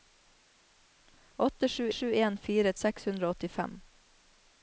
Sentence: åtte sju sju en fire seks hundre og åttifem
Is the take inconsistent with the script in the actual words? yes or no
no